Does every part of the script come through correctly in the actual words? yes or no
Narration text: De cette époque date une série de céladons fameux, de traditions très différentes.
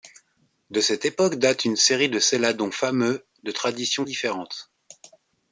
no